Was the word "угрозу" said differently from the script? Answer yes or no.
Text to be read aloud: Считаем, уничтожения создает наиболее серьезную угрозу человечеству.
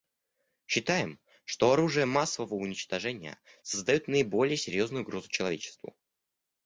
no